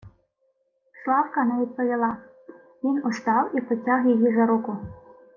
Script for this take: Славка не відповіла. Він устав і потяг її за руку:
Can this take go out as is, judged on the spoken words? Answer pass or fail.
pass